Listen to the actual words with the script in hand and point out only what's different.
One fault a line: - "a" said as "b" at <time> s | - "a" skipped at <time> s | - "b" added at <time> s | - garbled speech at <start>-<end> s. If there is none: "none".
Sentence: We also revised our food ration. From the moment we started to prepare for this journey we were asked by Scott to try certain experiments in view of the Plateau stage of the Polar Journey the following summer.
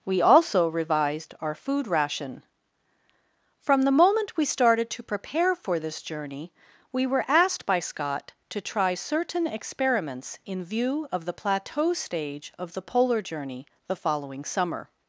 none